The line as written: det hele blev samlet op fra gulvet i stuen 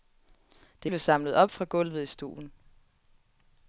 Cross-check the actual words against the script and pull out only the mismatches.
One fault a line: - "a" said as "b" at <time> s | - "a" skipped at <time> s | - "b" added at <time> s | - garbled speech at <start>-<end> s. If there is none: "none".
- "hele" skipped at 0.9 s